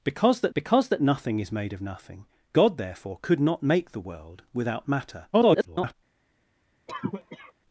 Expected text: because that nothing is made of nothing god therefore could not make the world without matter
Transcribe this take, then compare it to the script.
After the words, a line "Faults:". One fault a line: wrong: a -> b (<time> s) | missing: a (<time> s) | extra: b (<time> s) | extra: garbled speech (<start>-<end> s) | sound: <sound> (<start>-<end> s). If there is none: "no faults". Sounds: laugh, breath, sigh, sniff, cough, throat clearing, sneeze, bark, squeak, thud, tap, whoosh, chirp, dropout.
because that because that nothing is made of nothing god therefore could not make the world without matter [garbled]
Faults:
extra: because that (0.5 s)
extra: garbled speech (5.3-5.9 s)
sound: cough (6.9-7.5 s)